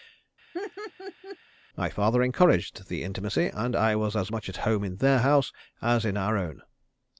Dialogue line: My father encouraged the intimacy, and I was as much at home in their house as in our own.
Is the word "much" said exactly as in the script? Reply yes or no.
yes